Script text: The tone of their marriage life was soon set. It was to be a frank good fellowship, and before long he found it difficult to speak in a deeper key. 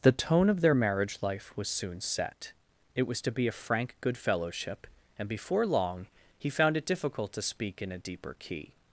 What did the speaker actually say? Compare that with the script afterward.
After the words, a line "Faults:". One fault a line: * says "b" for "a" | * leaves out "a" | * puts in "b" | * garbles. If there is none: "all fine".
The tone of their marriage life was soon set. It was to be a frank good fellowship, and before long he found it difficult to speak in a deeper key.
Faults:
all fine